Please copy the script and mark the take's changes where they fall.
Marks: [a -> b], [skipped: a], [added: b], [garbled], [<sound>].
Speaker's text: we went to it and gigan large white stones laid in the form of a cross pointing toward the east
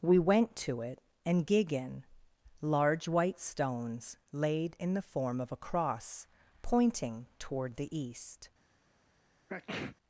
we went to it and gigan large white stones laid in the form of a cross pointing toward the east [sneeze]